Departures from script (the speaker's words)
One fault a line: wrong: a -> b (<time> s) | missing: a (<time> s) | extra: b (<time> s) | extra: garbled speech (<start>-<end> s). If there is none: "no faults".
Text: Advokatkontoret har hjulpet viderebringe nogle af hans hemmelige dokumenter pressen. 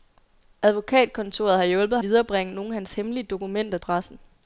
no faults